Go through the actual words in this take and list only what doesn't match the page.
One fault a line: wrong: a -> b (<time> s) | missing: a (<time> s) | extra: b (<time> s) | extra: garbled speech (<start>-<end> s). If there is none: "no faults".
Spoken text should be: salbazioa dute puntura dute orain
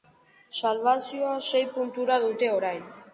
wrong: dute -> sei (1.5 s)